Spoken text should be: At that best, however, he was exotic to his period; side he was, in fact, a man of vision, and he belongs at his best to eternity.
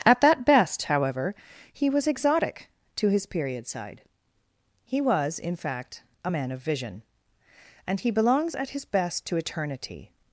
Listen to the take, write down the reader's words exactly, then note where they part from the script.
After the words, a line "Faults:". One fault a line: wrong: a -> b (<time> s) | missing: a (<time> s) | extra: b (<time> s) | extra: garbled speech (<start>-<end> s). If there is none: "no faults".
At that best, however, he was exotic to his period; side he was, in fact, a man of vision, and he belongs at his best to eternity.
Faults:
no faults